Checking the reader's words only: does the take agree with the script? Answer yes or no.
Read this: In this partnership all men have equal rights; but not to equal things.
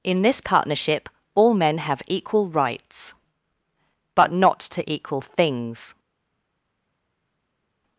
yes